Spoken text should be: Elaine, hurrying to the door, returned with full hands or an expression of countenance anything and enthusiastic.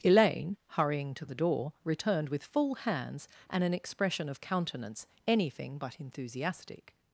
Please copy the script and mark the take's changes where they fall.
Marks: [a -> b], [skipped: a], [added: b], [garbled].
Elaine, hurrying to the door, returned with full hands [or -> and] an expression of countenance anything [and -> but] enthusiastic.